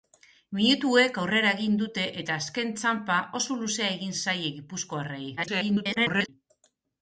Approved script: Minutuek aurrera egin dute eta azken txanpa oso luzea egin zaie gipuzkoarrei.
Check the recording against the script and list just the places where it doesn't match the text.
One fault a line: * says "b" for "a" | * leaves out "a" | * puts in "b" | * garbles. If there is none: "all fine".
* garbles